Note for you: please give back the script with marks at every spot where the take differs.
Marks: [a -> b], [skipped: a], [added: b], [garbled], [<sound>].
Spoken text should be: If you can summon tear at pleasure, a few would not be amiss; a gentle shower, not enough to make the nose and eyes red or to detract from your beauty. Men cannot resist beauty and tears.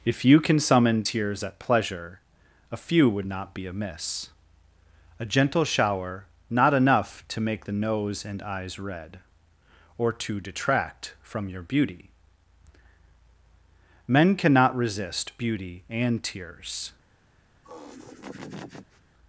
If you can summon [tear -> tears] at pleasure, a few would not be amiss; a gentle shower, not enough to make the nose and eyes red or to detract from your beauty. Men cannot resist beauty and tears. [laugh]